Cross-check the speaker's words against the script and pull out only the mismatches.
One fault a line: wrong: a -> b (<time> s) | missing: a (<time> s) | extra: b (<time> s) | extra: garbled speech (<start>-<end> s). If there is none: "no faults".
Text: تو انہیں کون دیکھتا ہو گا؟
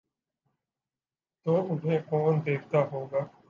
no faults